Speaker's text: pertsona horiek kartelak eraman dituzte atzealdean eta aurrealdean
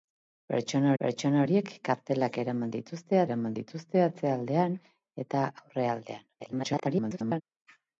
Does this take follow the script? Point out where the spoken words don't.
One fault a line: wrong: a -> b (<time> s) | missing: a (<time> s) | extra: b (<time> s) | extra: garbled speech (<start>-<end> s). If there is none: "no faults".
extra: pertsona (1.0 s)
extra: eraman dituzte (3.3 s)
extra: garbled speech (6.4-7.4 s)